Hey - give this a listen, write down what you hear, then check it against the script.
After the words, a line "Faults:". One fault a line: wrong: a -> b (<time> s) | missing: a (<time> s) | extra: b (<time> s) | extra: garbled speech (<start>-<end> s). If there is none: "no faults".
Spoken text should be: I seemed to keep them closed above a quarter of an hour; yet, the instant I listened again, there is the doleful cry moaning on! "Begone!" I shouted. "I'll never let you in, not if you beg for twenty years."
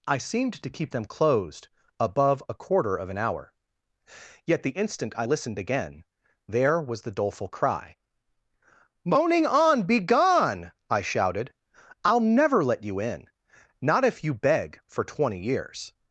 I seemed to keep them closed above a quarter of an hour; yet, the instant I listened again, there was the doleful cry moaning on! "Begone!" I shouted. "I'll never let you in, not if you beg for twenty years."
Faults:
wrong: is -> was (6.8 s)